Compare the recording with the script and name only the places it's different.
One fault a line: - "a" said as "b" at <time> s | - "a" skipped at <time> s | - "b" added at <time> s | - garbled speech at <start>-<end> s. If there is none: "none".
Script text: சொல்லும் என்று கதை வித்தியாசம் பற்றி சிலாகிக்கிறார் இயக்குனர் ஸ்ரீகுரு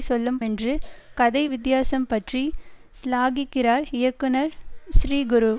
none